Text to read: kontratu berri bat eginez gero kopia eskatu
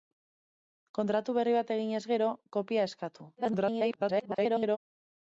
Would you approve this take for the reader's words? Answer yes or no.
no